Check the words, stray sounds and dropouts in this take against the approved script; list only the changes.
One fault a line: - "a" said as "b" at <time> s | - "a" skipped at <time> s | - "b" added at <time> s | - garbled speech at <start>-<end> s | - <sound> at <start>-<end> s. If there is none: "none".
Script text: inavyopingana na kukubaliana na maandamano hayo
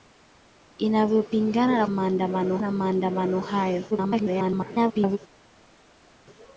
- "kukubaliana" said as "maandamano" at 1.9 s
- garbled speech at 3.9-5.2 s